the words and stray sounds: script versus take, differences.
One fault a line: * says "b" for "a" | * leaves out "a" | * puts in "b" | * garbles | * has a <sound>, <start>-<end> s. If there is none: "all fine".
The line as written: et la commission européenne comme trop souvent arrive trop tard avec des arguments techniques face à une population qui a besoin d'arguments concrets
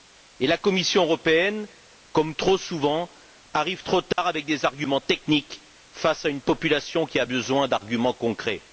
* has a dropout, 4.1-4.2 s